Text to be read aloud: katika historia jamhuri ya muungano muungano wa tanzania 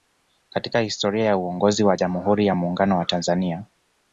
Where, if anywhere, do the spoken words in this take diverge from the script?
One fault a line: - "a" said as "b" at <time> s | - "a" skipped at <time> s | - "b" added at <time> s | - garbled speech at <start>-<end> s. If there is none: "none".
- "ya uongozi wa" added at 1.2 s
- "muungano" skipped at 3.0 s